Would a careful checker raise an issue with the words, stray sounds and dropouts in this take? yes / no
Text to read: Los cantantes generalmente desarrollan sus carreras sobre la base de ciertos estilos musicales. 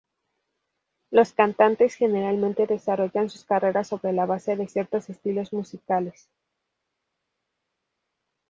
no